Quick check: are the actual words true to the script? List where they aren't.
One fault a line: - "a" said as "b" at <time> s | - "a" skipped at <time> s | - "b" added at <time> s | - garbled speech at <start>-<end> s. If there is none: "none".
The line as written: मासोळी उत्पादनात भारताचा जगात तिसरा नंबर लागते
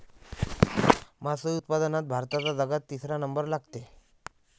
none